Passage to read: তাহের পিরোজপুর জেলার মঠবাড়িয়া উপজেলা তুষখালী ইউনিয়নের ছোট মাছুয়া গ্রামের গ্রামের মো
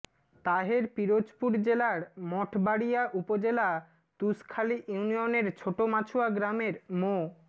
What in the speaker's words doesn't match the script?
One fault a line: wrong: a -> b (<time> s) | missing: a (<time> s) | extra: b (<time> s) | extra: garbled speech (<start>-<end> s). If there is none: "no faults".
missing: গ্রামের (6.7 s)